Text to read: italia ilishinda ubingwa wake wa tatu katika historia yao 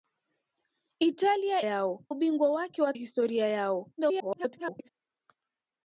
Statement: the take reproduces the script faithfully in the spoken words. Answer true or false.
false